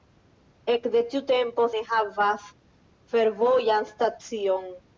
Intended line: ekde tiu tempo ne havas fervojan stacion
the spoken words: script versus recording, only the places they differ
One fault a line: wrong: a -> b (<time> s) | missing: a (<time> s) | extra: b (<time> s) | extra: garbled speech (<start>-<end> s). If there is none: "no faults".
no faults